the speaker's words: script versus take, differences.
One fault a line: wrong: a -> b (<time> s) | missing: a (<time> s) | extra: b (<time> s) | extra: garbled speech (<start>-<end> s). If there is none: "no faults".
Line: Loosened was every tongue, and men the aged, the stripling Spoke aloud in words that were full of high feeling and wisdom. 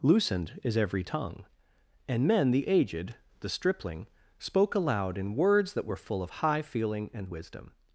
wrong: was -> is (0.6 s)